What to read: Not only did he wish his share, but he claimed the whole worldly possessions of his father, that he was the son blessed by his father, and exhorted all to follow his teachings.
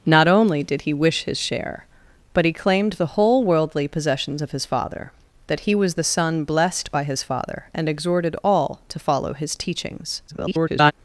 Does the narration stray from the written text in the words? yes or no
yes